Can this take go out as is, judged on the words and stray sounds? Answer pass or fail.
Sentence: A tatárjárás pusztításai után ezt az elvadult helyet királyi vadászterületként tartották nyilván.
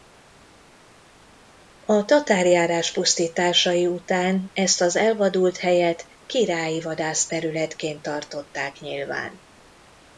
pass